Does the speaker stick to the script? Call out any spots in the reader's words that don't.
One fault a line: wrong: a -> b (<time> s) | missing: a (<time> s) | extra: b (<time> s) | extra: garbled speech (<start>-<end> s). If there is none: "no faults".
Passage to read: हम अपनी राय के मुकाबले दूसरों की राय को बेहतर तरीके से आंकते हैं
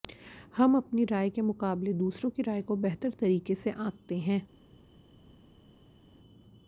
no faults